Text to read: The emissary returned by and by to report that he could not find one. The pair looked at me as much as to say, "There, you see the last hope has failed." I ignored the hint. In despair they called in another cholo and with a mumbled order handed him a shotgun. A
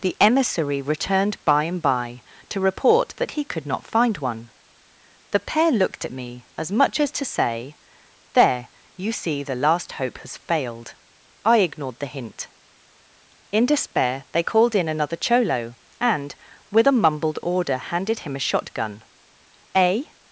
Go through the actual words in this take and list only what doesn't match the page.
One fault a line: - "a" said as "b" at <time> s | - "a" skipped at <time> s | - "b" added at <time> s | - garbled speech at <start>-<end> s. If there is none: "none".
none